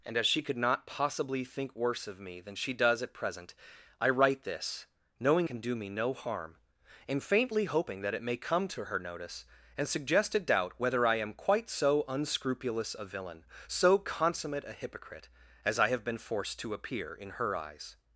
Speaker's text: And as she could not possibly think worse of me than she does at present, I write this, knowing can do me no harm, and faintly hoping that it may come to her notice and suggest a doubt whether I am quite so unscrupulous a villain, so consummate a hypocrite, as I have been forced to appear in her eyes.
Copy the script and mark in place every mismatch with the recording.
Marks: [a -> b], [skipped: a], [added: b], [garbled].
And as she could not possibly think worse of me than she does at present, I write this, knowing can do me no harm, and faintly hoping that it may come to her notice and suggest a doubt whether I am quite so unscrupulous a villain, so consummate a hypocrite, as I have been forced to appear in her eyes.